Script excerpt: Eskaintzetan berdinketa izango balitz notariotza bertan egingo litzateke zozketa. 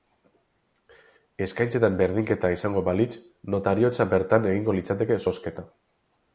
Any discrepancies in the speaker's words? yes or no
no